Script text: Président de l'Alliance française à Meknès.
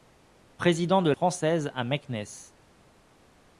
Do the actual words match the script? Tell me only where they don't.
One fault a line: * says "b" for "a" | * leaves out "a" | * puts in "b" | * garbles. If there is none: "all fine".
* leaves out "l'Alliance"